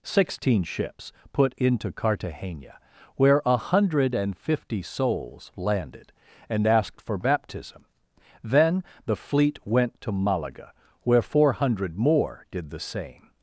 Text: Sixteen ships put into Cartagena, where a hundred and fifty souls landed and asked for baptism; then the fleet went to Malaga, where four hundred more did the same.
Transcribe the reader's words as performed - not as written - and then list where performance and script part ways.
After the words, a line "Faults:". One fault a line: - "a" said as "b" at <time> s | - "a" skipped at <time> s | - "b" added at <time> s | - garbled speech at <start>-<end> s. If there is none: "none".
Sixteen ships put into Cartagena, where a hundred and fifty souls landed and asked for baptism; then the fleet went to Malaga, where four hundred more did the same.
Faults:
none